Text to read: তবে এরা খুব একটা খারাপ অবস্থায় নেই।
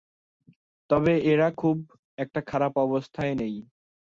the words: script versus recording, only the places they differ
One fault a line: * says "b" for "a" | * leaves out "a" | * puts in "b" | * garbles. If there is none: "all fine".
all fine